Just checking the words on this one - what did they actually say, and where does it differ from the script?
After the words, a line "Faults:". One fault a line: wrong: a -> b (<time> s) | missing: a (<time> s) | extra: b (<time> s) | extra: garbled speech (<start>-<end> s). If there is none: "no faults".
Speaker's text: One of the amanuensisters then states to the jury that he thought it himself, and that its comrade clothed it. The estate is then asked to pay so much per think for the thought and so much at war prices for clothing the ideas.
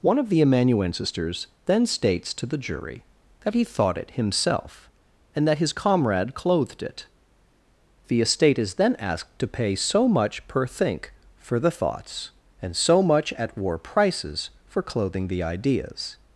One of the amanuensisters then states to the jury that he thought it himself, and that his comrade clothed it. The estate is then asked to pay so much per think for the thoughts and so much at war prices for clothing the ideas.
Faults:
wrong: its -> his (5.6 s)
wrong: thought -> thoughts (11.7 s)